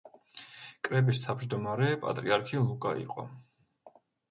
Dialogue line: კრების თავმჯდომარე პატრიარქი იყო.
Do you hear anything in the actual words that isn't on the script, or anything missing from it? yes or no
yes